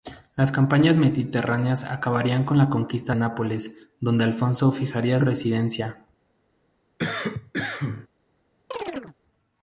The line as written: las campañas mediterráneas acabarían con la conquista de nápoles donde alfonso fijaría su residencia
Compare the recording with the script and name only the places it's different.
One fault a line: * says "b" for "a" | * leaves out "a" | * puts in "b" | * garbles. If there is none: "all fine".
* leaves out "de"
* leaves out "su"